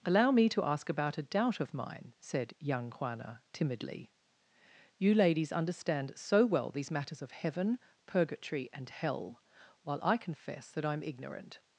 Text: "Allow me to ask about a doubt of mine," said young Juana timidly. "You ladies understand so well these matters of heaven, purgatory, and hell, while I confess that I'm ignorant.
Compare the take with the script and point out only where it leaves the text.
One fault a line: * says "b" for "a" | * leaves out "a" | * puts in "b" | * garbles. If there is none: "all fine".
all fine